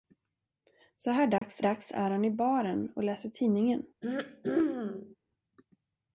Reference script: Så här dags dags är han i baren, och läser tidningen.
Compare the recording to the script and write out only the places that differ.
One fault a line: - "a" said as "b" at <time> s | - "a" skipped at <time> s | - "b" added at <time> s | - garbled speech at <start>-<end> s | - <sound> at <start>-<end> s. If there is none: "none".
- dropout at 1.4-1.4 s
- throat clearing at 4.0-5.2 s